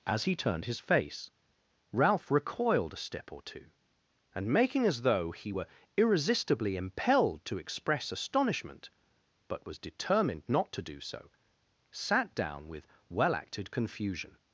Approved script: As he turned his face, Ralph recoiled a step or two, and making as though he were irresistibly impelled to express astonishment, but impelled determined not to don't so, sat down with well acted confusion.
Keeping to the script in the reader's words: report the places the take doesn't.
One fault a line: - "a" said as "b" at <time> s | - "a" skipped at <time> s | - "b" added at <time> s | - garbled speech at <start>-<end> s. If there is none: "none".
- "impelled" said as "was" at 9.7 s
- "don't" said as "do" at 10.8 s